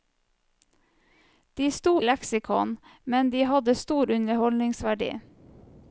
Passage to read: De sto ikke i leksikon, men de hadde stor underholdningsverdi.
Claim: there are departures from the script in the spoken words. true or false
true